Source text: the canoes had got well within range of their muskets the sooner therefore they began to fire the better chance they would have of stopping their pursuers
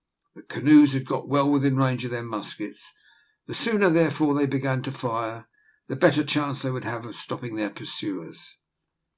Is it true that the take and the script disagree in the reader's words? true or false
false